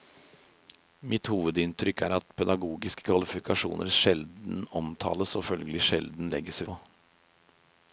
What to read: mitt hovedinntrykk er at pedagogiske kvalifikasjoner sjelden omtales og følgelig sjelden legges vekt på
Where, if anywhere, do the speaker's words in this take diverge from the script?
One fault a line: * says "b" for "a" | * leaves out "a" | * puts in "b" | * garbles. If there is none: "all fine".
* leaves out "vekt"